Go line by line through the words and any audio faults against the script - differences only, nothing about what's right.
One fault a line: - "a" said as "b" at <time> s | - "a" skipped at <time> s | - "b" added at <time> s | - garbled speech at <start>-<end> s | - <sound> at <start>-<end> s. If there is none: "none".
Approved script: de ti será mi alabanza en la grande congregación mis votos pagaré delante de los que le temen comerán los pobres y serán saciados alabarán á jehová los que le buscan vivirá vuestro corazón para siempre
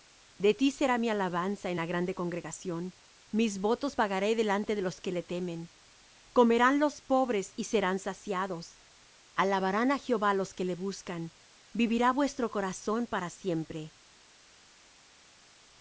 none